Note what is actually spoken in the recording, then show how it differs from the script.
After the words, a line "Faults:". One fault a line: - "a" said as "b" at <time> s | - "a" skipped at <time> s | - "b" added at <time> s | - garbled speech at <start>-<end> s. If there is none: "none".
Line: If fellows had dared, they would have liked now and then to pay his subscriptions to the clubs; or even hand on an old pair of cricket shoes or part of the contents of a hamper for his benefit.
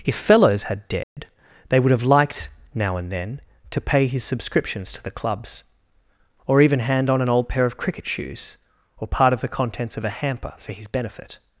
If fellows had dared, they would have liked now and then to pay his subscriptions to the clubs; or even hand on an old pair of cricket shoes or part of the contents of a hamper for his benefit.
Faults:
none